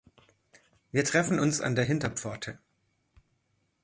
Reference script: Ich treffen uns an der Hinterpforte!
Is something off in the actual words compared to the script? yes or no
yes